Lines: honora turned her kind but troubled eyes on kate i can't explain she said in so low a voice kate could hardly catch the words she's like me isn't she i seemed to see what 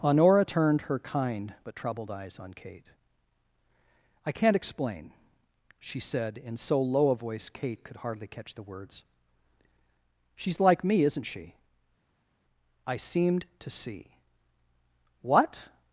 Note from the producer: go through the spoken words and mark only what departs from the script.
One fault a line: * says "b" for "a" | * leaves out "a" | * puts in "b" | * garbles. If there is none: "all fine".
all fine